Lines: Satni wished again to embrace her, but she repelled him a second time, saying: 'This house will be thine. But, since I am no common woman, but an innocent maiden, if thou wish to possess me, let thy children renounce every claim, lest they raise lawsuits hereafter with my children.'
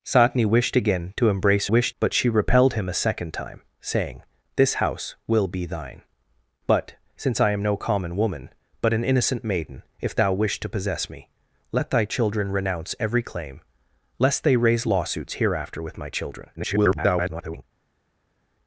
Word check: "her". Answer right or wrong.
wrong